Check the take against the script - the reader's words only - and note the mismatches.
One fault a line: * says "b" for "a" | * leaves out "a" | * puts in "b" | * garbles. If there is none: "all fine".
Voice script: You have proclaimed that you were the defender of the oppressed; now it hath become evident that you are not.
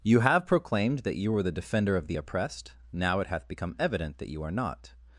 all fine